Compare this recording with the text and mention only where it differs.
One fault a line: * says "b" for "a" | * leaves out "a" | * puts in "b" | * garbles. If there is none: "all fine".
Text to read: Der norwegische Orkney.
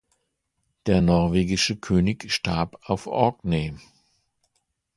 * puts in "König starb auf"